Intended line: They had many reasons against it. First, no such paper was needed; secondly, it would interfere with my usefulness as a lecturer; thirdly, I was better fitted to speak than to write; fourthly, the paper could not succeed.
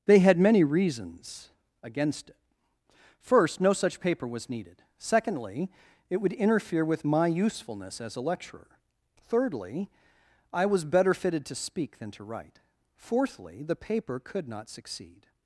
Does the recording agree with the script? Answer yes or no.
yes